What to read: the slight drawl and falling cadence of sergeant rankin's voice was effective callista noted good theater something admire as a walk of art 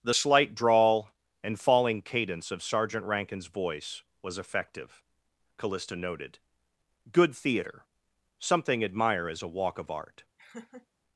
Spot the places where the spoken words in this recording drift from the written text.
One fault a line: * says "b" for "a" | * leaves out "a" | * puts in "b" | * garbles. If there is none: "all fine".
all fine